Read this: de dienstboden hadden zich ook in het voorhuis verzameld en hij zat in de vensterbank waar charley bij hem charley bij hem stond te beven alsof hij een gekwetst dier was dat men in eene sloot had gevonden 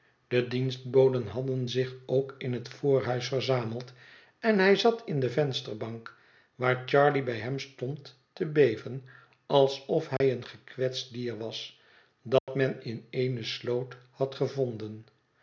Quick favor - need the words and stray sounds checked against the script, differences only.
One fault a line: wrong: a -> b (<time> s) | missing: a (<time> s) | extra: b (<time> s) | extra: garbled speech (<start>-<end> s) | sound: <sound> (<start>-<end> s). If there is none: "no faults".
missing: charley bij hem (7.6 s)
sound: dropout (10.2-10.2 s)
sound: dropout (12.4-12.5 s)